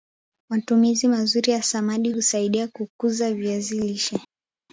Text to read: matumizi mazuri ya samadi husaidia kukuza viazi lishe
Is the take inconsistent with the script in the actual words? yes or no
no